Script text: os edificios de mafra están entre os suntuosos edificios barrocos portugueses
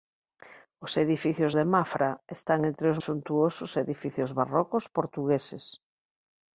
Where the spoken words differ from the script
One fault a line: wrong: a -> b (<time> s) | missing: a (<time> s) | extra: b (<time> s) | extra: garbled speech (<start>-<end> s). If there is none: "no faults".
no faults